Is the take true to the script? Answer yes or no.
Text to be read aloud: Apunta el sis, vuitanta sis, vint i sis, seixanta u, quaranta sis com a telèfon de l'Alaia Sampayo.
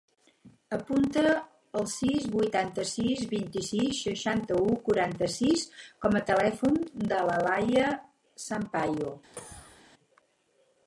yes